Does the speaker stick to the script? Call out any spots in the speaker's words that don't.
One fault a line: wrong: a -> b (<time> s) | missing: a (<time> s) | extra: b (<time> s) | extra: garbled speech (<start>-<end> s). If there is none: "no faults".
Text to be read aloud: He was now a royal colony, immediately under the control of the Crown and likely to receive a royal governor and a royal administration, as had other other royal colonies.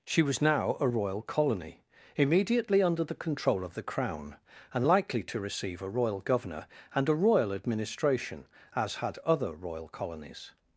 wrong: He -> She (0.1 s)
missing: other (9.5 s)